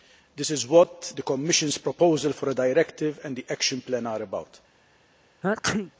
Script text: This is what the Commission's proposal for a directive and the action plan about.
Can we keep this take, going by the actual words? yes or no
no